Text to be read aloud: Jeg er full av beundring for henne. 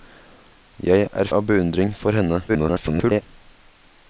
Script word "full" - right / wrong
wrong